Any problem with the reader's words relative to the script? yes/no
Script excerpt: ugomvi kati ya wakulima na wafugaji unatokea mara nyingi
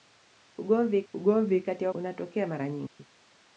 yes